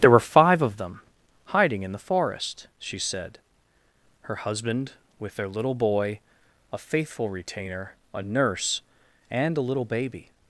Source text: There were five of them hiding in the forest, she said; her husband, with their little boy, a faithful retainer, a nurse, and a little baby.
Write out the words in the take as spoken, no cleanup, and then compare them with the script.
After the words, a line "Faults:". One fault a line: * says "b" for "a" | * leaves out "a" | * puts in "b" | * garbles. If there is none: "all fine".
There were five of them hiding in the forest, she said; her husband, with their little boy, a faithful retainer, a nurse, and a little baby.
Faults:
all fine